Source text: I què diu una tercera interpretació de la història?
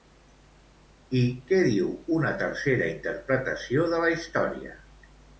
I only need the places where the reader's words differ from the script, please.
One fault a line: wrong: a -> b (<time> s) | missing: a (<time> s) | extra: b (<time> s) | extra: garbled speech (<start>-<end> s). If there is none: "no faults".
no faults